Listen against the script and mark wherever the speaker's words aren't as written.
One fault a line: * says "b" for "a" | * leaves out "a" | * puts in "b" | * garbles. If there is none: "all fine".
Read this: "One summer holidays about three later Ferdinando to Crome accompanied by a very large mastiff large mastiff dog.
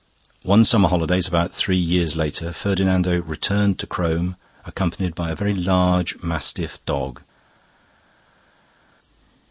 * puts in "years"
* puts in "returned"
* leaves out "large mastiff"